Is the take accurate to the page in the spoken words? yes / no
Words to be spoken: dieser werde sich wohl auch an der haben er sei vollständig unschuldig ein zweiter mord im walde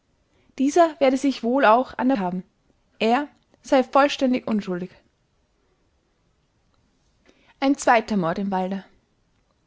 yes